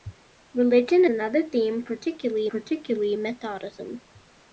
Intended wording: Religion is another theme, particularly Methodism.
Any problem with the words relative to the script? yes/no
yes